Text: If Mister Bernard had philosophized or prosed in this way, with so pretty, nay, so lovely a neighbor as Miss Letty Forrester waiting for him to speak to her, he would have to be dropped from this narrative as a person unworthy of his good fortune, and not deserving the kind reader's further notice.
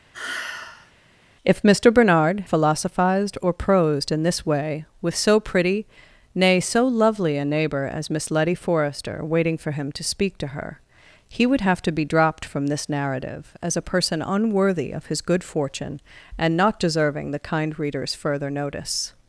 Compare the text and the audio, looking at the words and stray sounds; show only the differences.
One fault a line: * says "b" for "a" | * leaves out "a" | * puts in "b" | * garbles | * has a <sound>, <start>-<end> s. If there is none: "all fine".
* has a sigh, 0.1-0.9 s
* leaves out "had"